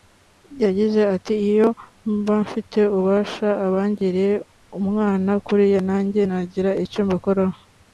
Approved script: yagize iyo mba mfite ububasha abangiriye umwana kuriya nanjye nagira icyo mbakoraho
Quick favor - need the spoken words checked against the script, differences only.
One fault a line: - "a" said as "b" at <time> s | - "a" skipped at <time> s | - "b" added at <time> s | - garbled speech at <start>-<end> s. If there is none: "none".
- "ati" added at 1.1 s